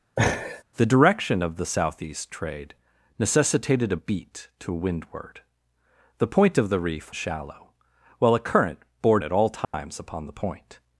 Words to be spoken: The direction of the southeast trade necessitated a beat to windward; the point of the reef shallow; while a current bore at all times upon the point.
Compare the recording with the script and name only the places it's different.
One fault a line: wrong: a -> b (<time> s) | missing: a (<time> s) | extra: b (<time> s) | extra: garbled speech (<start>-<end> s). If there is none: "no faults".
no faults